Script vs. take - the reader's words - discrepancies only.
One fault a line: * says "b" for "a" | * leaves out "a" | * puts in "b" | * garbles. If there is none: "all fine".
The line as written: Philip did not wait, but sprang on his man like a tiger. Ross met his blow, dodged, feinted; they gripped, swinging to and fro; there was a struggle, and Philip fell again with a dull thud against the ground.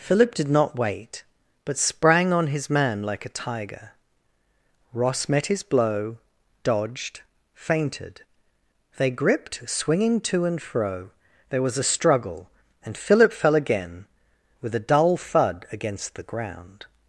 all fine